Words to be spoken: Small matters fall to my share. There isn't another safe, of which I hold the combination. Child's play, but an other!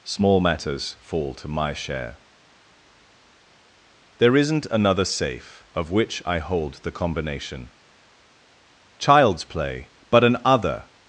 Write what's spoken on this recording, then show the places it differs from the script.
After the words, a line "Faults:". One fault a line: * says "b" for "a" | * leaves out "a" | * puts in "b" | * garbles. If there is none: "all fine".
Small matters fall to my share. There isn't another safe, of which I hold the combination. Child's play, but an other!
Faults:
all fine